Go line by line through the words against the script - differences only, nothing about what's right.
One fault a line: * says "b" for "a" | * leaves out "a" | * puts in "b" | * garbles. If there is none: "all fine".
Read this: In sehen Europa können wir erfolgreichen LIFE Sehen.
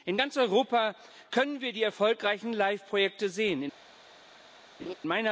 * says "ganz" for "sehen"
* puts in "die"
* puts in "Projekte"